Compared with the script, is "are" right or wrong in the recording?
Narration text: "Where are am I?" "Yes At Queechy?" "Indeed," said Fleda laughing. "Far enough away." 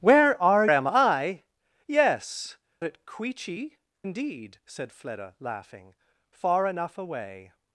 right